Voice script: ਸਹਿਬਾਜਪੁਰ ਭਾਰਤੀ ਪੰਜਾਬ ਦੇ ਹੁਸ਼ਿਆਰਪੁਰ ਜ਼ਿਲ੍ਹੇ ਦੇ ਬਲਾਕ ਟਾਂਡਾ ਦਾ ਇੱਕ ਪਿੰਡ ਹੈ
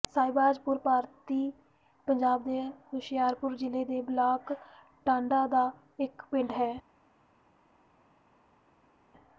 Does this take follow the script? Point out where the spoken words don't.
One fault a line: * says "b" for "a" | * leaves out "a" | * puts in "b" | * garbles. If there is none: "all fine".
all fine